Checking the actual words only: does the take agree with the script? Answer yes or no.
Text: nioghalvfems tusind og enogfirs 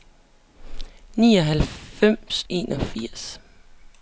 no